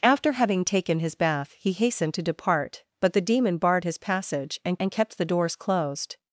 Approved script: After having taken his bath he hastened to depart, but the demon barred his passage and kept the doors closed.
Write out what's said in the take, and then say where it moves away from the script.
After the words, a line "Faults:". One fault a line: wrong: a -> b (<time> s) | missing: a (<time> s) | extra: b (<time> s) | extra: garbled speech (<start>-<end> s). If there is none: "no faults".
After having taken his bath he hastened to depart, but the demon barred his passage and and kept the doors closed.
Faults:
extra: and (4.8 s)